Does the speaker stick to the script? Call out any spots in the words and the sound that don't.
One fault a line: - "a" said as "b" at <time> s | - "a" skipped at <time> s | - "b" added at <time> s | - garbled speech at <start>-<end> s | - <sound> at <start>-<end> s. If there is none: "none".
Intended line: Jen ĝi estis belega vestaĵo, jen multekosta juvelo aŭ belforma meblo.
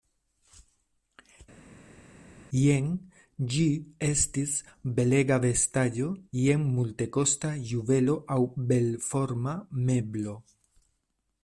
none